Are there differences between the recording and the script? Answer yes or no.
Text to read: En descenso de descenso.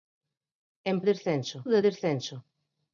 no